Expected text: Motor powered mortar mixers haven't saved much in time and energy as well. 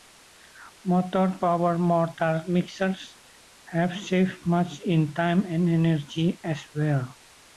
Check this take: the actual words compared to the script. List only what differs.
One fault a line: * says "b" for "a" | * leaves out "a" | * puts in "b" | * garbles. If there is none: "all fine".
* says "have" for "haven't"